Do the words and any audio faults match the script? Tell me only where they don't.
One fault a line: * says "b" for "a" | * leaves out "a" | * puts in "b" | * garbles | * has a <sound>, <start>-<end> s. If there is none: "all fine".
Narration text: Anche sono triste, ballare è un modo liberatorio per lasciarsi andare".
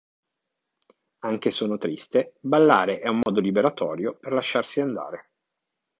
* has a dropout, 3.2-3.3 s